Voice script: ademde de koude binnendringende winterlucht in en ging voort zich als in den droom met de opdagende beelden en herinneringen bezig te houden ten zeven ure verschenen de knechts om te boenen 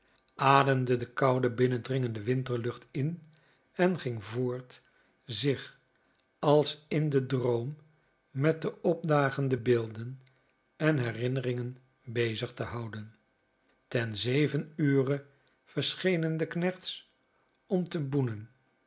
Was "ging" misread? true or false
false